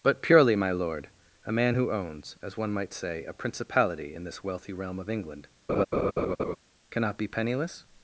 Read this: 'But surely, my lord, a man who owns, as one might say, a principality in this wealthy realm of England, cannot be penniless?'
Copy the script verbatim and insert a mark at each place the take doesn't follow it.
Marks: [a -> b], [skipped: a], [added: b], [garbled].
'But [surely, -> purely] my lord, a man who owns, as one might say, a principality in this wealthy realm of England, cannot be penniless?'